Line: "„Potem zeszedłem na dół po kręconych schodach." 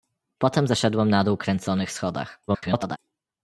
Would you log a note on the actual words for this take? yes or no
yes